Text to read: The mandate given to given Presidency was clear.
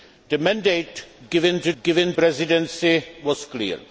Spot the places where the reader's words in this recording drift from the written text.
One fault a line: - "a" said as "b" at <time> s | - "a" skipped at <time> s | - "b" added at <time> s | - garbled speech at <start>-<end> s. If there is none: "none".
none